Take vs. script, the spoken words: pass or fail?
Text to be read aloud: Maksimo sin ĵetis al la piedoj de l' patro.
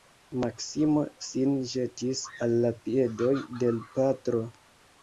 pass